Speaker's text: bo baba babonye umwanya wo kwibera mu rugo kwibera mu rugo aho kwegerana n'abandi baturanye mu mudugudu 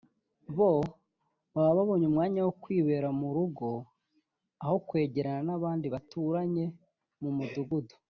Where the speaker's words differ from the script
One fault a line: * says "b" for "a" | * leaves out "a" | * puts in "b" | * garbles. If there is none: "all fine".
* leaves out "kwibera mu rugo"